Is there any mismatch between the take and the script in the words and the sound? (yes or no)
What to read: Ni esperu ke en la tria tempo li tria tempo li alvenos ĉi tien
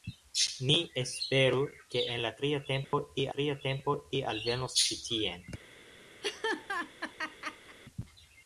yes